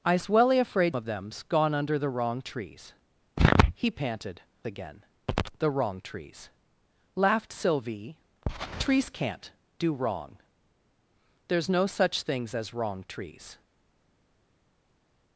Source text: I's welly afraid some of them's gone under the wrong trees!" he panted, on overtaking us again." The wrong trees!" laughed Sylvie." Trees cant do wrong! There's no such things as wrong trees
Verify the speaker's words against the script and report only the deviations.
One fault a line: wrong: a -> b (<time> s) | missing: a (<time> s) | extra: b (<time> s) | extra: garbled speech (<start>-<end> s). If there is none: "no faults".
missing: some (0.9 s)
missing: on overtaking us (4.4 s)